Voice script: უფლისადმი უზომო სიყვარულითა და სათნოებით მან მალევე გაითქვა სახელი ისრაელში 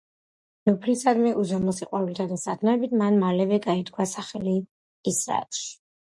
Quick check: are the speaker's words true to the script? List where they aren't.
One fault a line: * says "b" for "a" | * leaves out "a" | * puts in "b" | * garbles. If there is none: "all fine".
all fine